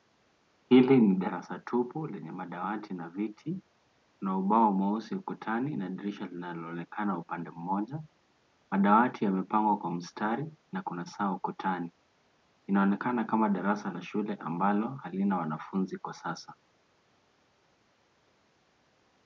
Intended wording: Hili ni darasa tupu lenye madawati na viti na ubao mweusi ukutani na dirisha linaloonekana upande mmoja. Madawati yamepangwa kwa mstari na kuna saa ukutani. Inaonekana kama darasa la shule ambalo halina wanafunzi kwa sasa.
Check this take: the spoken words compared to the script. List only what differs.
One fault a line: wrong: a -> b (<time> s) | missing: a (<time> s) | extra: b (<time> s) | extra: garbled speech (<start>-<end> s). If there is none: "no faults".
no faults